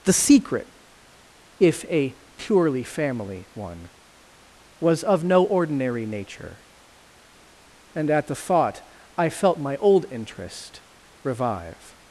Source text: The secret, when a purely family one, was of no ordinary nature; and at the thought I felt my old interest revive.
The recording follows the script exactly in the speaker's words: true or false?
false